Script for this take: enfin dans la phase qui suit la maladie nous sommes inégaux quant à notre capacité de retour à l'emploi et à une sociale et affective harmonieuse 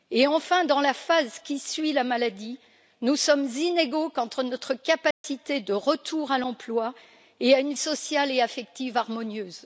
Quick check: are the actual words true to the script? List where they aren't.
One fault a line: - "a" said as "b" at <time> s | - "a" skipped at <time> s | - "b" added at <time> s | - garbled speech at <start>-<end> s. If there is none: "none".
none